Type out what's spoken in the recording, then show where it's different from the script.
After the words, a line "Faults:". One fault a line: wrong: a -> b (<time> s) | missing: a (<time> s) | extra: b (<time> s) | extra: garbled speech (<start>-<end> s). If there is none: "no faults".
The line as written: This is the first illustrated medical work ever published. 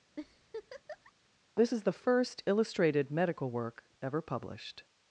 This is the first illustrated medical work ever published.
Faults:
no faults